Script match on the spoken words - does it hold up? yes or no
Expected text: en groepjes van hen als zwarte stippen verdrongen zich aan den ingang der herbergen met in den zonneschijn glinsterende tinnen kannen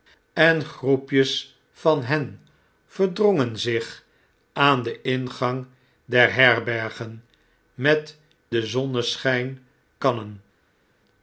no